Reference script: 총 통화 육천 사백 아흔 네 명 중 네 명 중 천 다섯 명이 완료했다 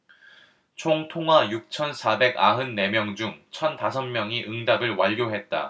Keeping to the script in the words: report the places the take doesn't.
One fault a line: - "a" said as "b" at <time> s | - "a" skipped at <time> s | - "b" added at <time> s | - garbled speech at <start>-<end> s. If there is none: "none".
- "네 명 중" skipped at 3.4 s
- "응답을" added at 4.5 s